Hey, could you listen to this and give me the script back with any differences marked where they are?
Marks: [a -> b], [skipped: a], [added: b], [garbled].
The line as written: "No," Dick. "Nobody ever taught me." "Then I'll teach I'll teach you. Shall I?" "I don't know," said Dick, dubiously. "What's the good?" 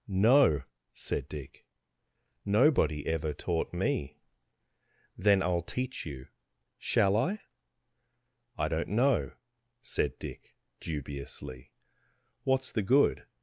"No," [added: said] Dick. "Nobody ever taught me." "Then I'll teach [skipped: I'll teach] you. Shall I?" "I don't know," said Dick, dubiously. "What's the good?"